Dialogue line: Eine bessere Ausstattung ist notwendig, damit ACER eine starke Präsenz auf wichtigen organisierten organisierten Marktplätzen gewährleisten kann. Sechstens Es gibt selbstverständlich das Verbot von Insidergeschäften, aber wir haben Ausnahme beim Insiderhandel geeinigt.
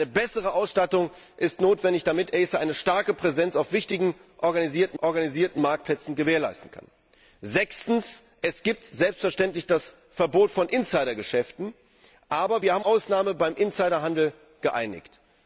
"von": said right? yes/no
yes